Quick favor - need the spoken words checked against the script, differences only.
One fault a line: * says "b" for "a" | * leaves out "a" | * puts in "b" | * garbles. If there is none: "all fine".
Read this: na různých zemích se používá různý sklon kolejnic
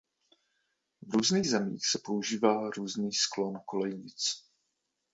* says "v" for "na"